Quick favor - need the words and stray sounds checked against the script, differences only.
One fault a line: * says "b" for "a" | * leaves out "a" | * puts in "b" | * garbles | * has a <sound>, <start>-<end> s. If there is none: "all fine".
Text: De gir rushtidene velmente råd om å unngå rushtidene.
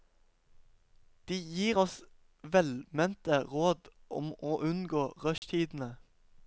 * says "oss" for "rushtidene"
* has a dropout, 5.4-5.4 s